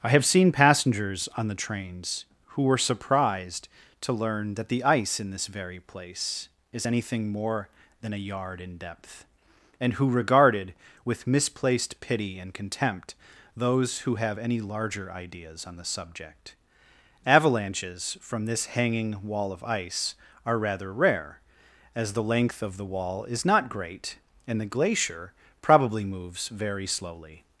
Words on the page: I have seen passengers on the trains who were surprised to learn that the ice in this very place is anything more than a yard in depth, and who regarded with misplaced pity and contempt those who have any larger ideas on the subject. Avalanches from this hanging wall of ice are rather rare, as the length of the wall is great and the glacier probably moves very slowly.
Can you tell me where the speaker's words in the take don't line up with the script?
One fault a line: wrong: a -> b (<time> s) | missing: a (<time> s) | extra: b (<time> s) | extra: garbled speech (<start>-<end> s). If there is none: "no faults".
extra: not (23.5 s)